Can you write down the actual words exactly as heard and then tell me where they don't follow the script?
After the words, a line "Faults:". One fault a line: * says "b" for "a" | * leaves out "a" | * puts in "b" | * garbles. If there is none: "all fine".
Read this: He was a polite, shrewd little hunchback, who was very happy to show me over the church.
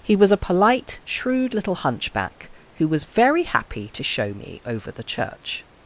He was a polite, shrewd little hunchback, who was very happy to show me over the church.
Faults:
all fine